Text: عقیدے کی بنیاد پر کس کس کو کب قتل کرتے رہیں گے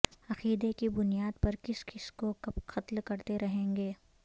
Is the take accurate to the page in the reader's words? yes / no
yes